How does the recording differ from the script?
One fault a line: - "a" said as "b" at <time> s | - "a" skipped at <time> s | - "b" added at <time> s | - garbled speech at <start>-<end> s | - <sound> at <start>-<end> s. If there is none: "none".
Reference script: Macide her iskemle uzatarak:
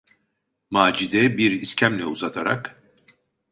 - "her" said as "bir" at 1.4 s